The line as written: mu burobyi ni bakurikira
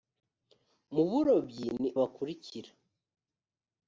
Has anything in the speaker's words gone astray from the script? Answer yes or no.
no